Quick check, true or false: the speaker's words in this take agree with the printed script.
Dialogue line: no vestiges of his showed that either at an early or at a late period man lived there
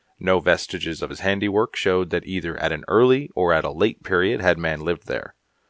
false